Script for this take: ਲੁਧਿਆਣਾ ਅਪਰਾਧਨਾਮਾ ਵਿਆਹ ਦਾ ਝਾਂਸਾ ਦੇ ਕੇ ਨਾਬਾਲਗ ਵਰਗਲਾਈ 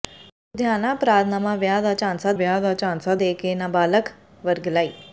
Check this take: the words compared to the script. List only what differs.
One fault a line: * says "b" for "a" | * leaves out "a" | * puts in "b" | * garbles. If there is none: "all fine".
* puts in "ਵਿਆਹ ਦਾ ਝਾਂਸਾ"